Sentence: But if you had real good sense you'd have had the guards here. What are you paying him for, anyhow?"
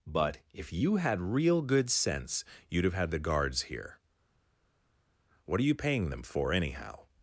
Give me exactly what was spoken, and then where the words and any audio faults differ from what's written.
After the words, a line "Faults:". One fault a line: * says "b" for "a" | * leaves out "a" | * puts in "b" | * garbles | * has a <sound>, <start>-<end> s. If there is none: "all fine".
But if you had real good sense you'd have had the guards here. What are you paying them for, anyhow?"
Faults:
* says "them" for "him"